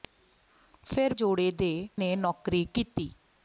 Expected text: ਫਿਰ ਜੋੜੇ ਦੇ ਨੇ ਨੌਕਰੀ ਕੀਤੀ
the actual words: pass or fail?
pass